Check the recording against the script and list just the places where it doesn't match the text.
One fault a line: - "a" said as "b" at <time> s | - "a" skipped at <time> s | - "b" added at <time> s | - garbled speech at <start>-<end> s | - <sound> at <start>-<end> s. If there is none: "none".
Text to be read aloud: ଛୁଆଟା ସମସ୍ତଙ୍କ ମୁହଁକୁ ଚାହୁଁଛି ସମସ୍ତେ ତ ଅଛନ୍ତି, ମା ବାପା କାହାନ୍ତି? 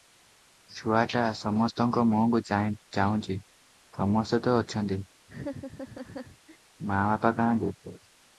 - laugh at 5.3-6.6 s